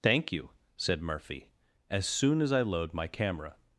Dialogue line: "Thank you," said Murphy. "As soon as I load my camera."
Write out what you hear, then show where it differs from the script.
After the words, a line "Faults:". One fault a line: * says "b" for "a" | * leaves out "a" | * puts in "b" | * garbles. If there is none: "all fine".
"Thank you," said Murphy. "As soon as I load my camera."
Faults:
all fine